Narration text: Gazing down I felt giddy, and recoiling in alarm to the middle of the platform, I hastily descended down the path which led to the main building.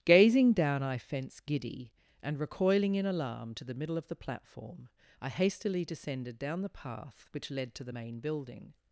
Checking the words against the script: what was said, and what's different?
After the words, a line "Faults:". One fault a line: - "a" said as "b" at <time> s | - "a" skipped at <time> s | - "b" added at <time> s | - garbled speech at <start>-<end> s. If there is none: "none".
Gazing down I fence giddy, and recoiling in alarm to the middle of the platform, I hastily descended down the path which led to the main building.
Faults:
- "felt" said as "fence" at 1.0 s